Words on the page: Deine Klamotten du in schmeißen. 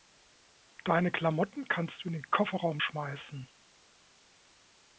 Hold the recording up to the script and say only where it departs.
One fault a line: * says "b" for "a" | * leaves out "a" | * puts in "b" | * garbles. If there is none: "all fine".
* puts in "kannst"
* puts in "den Kofferraum"